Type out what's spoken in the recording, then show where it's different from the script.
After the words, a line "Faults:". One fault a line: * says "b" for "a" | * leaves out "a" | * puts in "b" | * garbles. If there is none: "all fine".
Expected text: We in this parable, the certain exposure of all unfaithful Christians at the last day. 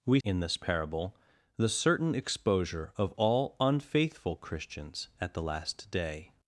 We in this parable, the certain exposure of all unfaithful Christians at the last day.
Faults:
all fine